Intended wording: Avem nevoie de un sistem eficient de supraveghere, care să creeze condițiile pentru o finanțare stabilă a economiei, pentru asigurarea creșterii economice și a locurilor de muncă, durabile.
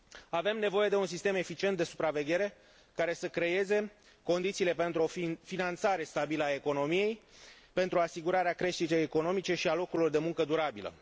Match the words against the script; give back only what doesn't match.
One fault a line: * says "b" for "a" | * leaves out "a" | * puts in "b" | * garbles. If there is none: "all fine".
all fine